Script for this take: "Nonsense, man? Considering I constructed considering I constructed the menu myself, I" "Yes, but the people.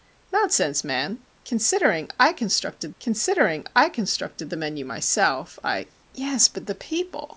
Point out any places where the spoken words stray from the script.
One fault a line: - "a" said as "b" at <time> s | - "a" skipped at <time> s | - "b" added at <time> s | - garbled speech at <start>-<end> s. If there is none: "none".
none